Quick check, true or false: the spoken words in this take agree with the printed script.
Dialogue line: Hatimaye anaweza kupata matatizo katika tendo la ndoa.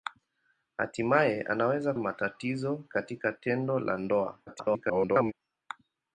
false